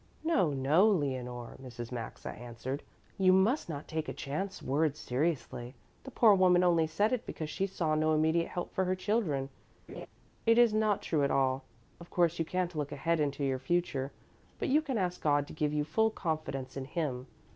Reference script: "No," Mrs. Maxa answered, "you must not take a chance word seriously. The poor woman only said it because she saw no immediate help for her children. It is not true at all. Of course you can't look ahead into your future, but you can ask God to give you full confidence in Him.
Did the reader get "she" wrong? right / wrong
right